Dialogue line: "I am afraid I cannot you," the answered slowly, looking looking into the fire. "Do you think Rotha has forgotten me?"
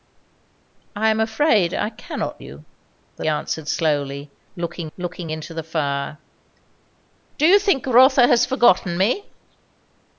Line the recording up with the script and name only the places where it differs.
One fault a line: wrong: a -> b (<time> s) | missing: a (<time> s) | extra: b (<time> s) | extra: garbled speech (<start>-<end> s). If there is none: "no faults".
no faults